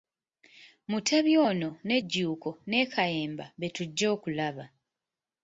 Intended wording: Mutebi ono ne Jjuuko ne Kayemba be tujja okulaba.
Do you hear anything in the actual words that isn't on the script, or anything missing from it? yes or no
no